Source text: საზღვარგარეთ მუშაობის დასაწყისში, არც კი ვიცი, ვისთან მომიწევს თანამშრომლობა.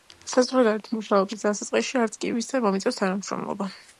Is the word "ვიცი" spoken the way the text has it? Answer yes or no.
no